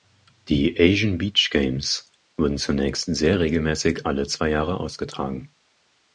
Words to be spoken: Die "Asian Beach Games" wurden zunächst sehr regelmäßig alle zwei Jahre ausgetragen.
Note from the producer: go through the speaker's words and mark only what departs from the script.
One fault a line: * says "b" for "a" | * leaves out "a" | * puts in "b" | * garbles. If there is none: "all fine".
all fine